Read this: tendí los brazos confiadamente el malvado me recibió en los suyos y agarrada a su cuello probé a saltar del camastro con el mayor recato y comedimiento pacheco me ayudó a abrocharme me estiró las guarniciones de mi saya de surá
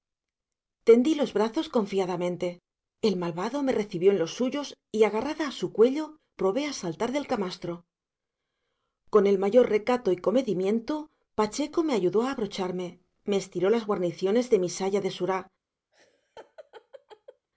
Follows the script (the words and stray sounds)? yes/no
no